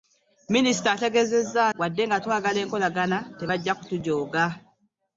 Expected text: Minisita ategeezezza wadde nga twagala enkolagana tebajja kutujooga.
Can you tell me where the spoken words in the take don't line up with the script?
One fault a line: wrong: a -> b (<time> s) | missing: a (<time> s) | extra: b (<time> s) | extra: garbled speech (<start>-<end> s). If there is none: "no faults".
no faults